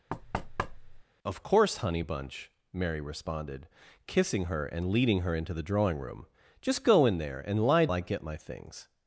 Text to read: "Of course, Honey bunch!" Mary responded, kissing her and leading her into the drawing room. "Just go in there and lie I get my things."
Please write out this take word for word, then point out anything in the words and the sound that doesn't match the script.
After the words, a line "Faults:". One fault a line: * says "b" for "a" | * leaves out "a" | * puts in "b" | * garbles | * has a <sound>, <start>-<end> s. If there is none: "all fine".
"Of course, Honey bunch!" Mary responded, kissing her and leading her into the drawing room. "Just go in there and lie I get my things."
Faults:
* has a thud, 0.1-1.0 s